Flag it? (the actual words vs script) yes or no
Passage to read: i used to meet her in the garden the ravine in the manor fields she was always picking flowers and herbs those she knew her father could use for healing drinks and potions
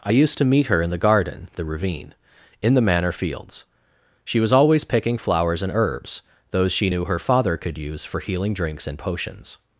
no